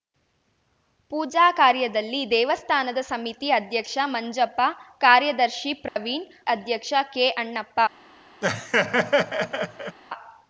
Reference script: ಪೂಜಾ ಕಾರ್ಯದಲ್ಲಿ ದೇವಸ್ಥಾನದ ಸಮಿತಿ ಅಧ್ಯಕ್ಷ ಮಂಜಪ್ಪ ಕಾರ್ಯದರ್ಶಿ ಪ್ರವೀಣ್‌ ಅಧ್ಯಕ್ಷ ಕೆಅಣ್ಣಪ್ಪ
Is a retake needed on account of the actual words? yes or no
no